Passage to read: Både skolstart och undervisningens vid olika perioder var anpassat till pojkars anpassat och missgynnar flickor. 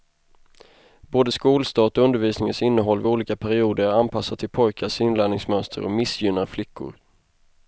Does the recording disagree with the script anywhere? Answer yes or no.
yes